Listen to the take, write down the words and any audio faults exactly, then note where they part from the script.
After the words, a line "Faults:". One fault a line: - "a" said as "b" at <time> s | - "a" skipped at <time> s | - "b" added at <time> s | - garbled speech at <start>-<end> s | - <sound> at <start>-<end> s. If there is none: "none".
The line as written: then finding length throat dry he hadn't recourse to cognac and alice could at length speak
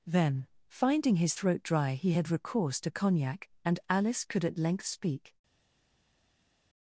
then finding his throat dry he had recourse to cognac and alice could at length speak
Faults:
- "length" said as "his" at 1.2 s
- "hadn't" said as "had" at 2.1 s